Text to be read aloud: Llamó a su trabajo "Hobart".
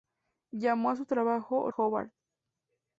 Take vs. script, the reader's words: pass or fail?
pass